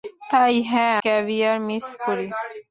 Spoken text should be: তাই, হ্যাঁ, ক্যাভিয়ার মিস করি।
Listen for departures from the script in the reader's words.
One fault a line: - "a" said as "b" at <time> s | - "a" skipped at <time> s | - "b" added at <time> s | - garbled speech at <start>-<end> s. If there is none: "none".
none